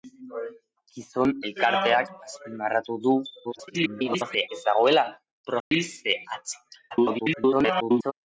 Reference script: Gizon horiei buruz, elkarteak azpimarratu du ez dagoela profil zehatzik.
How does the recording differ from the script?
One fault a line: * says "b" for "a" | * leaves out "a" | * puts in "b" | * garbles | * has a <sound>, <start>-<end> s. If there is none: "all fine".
* leaves out "horiei buruz"
* garbles
* has a dropout, 5.6-5.7 s
* garbles